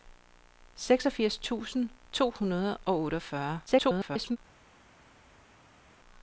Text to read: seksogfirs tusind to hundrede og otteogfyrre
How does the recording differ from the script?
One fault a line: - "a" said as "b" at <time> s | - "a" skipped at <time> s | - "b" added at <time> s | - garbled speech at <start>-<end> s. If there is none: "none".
- garbled speech at 3.7-4.4 s